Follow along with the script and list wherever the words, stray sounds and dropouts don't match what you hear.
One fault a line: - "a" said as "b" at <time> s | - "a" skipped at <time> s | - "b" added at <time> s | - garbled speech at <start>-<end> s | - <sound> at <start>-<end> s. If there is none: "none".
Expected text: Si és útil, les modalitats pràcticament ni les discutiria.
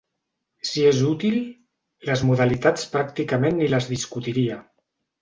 none